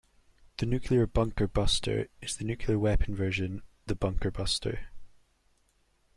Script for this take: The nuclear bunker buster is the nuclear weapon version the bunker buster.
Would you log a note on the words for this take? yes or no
no